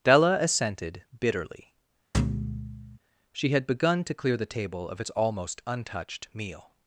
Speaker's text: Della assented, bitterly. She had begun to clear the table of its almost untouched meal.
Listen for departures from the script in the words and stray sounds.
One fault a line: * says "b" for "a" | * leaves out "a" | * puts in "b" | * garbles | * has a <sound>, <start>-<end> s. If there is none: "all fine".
* has a thud, 2.1-3.0 s